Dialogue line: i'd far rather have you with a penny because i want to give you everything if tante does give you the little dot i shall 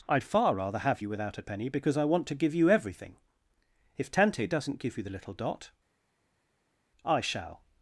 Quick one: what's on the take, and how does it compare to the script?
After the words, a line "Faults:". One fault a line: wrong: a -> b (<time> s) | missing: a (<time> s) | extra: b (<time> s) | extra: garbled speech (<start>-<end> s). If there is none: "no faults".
i'd far rather have you without a penny because i want to give you everything if tante doesn't give you the little dot i shall
Faults:
wrong: with -> without (1.1 s)
wrong: does -> doesn't (4.5 s)